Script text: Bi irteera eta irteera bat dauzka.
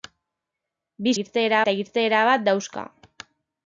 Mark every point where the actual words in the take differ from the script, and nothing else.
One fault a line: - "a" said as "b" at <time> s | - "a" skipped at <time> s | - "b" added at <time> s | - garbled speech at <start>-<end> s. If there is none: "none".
none